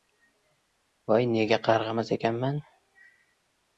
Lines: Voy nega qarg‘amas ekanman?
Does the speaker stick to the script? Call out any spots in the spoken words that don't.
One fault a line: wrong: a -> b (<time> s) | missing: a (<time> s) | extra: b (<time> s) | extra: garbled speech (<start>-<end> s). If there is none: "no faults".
no faults